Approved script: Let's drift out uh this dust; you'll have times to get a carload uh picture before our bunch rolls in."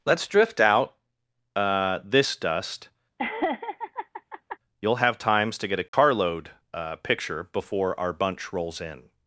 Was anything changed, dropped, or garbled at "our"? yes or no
no